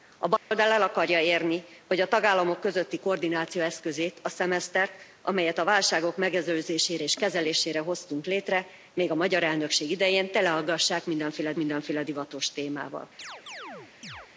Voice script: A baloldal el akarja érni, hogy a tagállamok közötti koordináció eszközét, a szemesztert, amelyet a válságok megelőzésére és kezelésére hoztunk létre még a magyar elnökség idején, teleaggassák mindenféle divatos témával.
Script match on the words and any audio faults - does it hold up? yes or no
no